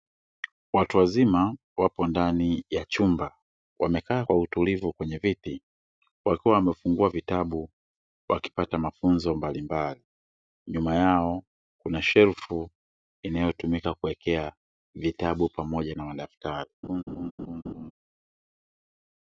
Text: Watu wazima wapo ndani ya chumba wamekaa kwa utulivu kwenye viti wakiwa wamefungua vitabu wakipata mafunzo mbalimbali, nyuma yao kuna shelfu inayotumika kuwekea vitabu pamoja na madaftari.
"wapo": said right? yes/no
yes